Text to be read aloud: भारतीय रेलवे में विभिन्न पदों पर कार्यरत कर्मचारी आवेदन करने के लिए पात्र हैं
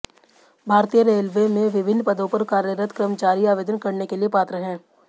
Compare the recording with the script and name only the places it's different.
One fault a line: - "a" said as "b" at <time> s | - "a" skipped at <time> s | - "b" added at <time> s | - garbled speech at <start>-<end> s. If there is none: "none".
none